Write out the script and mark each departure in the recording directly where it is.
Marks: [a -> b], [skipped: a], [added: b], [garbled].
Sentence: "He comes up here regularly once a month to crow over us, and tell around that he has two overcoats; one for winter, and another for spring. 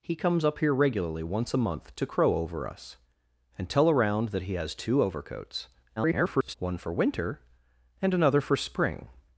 "He comes up here regularly once a month to crow over us, and tell around that he has two overcoats; [garbled] one for winter, and another for spring.